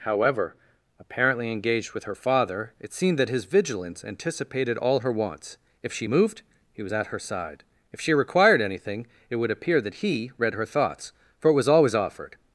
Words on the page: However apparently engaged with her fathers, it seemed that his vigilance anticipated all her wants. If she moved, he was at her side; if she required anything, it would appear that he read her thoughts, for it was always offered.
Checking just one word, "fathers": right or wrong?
wrong